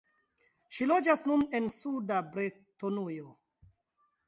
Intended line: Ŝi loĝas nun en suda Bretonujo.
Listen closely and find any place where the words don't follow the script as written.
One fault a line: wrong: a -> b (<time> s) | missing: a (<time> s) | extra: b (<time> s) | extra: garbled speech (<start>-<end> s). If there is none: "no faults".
no faults